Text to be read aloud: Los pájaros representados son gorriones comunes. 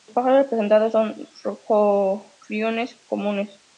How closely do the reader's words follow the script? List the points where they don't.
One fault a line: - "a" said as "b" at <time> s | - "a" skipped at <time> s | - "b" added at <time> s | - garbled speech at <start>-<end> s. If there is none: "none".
none